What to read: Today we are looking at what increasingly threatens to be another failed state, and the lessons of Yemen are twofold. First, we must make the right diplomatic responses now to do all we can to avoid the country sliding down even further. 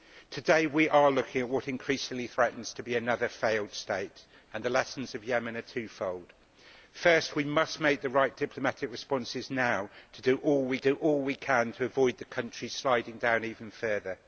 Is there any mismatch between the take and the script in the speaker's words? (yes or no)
yes